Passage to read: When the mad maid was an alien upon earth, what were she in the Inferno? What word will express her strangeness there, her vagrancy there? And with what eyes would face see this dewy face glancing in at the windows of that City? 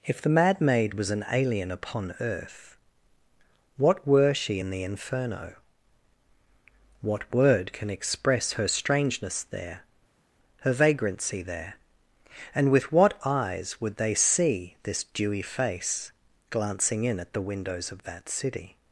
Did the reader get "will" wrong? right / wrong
wrong